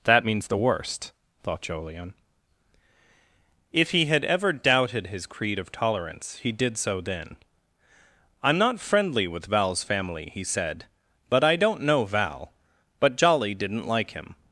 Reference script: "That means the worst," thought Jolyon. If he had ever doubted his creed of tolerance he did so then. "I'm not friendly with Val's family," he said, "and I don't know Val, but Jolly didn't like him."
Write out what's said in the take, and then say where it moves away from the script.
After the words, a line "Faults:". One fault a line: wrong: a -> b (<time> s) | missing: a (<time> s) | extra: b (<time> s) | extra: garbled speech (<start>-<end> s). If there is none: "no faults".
"That means the worst," thought Jolyon. If he had ever doubted his creed of tolerance he did so then. "I'm not friendly with Val's family," he said, "but I don't know Val, but Jolly didn't like him."
Faults:
wrong: and -> but (11.3 s)